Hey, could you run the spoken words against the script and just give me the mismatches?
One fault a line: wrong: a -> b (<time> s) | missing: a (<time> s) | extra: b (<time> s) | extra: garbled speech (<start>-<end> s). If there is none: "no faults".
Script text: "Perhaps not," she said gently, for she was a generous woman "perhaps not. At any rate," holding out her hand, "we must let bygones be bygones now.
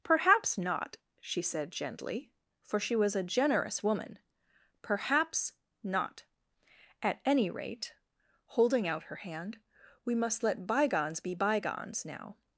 no faults